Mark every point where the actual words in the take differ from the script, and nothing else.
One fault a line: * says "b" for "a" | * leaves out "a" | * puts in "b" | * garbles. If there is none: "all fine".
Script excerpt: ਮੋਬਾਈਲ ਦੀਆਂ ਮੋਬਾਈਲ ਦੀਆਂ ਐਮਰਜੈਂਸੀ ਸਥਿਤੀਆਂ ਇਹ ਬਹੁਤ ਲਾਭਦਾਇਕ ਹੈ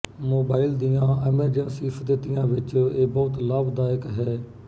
* leaves out "ਮੋਬਾਈਲ ਦੀਆਂ"
* puts in "ਵਿੱਚ"